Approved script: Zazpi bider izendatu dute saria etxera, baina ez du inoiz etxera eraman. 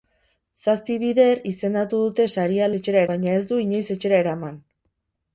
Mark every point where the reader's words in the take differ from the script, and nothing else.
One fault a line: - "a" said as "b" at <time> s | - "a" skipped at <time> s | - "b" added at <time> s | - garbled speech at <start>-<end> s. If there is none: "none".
none